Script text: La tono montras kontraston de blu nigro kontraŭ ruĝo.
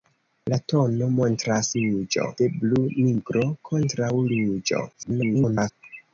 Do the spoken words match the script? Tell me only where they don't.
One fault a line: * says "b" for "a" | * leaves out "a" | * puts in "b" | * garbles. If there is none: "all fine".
* says "ruĝo" for "kontraston"
* garbles